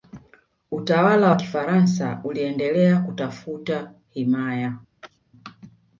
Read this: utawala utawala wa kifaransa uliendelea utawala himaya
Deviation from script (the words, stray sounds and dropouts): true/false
true